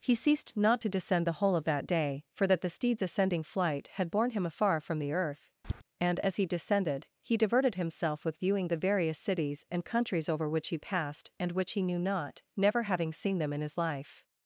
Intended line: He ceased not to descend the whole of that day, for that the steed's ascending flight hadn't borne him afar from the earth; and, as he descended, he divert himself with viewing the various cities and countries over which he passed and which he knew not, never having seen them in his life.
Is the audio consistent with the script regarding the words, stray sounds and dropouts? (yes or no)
no